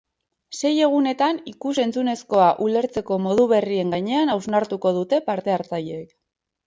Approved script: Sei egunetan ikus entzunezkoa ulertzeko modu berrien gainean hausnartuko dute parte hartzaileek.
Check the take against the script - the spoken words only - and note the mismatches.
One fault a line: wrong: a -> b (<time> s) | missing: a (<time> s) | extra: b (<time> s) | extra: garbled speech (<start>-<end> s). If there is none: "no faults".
no faults